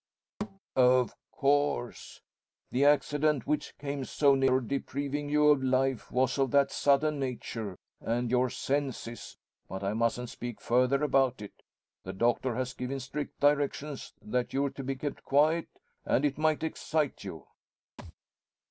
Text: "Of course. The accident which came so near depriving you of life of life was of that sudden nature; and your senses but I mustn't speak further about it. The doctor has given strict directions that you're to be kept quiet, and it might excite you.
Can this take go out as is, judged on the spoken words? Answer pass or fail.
fail